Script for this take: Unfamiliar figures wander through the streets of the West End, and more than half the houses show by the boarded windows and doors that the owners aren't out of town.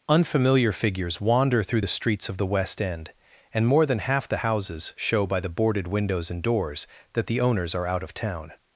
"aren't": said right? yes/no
no